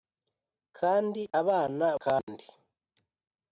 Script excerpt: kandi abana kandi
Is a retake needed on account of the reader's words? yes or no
no